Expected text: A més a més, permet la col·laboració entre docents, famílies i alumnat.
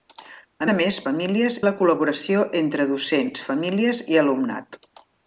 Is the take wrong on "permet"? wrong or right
wrong